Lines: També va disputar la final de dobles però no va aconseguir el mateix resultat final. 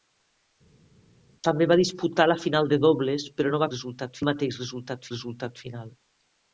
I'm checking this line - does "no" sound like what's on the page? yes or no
yes